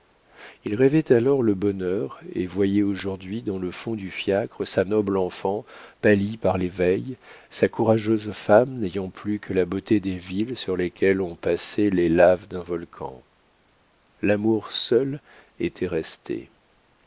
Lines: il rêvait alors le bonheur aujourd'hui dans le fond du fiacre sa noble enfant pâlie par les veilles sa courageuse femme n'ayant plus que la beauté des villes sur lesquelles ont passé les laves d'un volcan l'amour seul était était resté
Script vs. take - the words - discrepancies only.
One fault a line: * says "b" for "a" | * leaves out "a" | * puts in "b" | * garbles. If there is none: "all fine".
* puts in "et voyait"
* leaves out "était"